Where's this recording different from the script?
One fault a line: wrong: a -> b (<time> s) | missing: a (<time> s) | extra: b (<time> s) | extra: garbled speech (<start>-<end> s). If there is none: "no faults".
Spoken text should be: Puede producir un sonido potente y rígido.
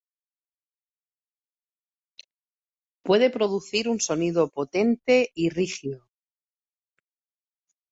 no faults